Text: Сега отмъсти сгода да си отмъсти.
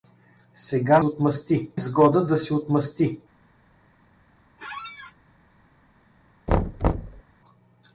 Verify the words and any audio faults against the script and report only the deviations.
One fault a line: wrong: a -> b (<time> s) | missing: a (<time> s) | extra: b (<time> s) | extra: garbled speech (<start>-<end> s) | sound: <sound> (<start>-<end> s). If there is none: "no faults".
sound: squeak (4.6-5.1 s)
sound: thud (6.5-7.2 s)